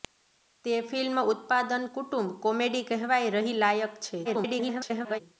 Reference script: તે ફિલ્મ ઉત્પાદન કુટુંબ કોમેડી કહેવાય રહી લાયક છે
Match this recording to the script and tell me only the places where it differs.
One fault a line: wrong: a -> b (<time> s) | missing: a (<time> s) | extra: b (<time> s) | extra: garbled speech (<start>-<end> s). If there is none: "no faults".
extra: garbled speech (4.2-5.2 s)